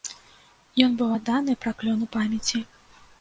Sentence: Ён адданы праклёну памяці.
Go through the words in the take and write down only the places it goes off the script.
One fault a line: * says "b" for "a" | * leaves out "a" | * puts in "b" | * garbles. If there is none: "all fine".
* puts in "быў"